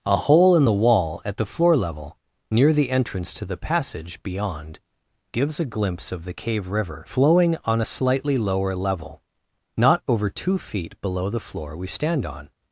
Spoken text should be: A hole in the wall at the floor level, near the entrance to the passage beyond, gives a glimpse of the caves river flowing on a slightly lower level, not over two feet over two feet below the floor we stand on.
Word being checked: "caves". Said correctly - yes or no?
no